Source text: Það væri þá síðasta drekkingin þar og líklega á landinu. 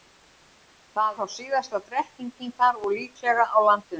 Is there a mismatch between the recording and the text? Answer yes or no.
yes